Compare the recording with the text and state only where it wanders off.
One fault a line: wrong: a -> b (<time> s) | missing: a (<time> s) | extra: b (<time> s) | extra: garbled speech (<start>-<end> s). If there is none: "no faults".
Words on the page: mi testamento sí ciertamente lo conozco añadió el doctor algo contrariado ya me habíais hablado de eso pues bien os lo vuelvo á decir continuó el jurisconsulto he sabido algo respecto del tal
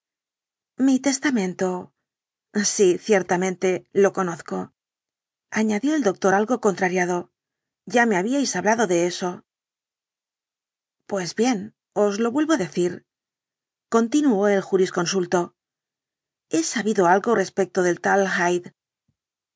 no faults